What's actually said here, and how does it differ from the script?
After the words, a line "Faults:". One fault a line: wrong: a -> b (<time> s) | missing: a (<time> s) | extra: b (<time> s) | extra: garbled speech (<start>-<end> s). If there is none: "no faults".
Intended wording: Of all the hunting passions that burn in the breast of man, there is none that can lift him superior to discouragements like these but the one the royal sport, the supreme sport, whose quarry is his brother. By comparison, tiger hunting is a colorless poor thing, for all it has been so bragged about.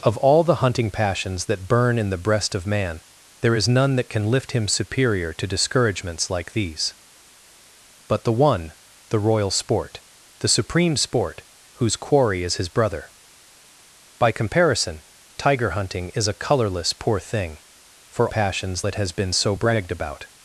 Of all the hunting passions that burn in the breast of man, there is none that can lift him superior to discouragements like these but the one the royal sport, the supreme sport, whose quarry is his brother. By comparison, tiger hunting is a colorless poor thing, for passions it has been so bragged about.
Faults:
wrong: all -> passions (18.3 s)